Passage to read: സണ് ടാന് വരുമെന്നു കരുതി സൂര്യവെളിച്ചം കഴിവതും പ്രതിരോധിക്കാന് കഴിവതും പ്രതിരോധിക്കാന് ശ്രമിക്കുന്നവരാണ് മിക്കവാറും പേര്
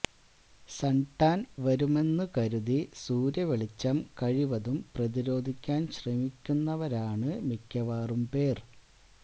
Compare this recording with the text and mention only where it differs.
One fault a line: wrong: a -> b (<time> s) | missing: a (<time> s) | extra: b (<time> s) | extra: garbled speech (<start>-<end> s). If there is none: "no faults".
missing: കഴിവതും പ്രതിരോധിക്കാന് (5.9 s)